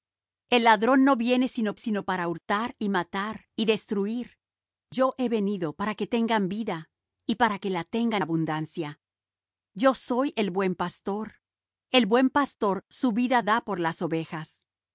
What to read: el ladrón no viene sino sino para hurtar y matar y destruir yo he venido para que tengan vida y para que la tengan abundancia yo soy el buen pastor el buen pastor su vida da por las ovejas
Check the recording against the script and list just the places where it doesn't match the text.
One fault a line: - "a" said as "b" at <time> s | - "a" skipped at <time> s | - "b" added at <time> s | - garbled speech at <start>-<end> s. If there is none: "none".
none